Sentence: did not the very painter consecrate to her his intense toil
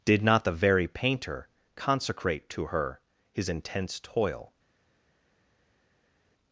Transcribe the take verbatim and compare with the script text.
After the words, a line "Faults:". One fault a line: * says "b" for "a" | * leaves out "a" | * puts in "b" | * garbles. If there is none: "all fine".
did not the very painter consecrate to her his intense toil
Faults:
all fine